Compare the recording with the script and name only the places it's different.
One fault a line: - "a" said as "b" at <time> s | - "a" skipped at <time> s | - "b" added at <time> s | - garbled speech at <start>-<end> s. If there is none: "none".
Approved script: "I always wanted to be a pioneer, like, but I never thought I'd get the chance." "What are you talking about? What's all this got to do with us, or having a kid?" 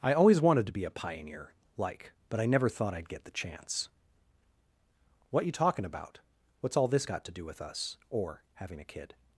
- "are" skipped at 5.5 s